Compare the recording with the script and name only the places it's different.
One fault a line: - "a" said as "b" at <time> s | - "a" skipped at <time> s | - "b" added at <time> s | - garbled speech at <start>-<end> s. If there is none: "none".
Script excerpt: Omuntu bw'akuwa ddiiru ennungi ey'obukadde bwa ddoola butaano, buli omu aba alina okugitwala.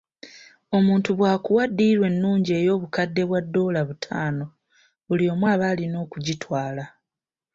none